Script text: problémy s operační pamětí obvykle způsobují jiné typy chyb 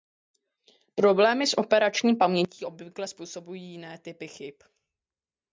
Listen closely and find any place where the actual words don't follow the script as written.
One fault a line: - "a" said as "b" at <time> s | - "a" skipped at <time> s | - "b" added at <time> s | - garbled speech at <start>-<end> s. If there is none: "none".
none